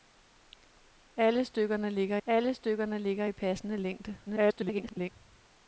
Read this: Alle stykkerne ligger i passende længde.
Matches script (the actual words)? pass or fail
fail